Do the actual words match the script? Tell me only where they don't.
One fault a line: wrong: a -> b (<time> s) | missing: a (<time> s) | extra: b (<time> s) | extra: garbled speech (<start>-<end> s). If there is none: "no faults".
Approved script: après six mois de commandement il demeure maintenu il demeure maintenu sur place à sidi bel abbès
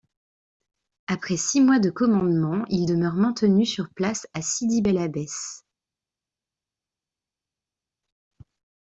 missing: il demeure maintenu (3.7 s)